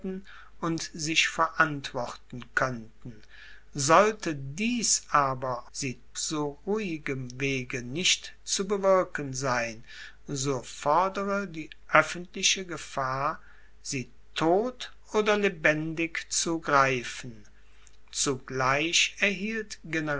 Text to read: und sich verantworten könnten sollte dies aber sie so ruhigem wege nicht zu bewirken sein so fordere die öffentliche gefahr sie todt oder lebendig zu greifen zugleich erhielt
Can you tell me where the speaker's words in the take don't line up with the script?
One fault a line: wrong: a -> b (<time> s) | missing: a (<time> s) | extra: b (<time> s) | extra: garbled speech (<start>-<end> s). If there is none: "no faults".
no faults